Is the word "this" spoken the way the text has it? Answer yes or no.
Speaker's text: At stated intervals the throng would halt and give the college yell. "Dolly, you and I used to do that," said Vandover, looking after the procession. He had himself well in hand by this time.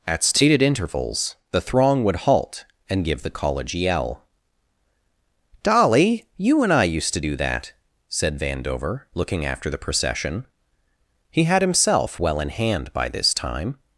yes